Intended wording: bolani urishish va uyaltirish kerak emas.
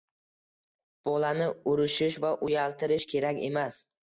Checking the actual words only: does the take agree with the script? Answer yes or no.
yes